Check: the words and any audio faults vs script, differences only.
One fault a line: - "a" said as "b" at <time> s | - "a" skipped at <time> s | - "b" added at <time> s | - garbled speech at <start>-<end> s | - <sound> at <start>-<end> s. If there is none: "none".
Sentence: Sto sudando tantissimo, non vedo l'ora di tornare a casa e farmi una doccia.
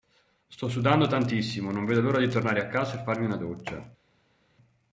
none